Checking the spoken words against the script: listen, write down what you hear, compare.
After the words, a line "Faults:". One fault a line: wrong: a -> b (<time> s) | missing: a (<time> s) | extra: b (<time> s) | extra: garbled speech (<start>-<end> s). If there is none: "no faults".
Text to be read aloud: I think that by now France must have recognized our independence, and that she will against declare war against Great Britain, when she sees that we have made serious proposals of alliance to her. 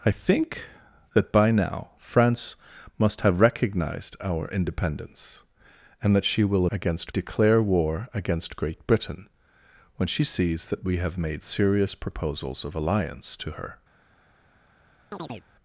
I think that by now France must have recognized our independence, and that she will against declare war against Great Britain, when she sees that we have made serious proposals of alliance to her.
Faults:
no faults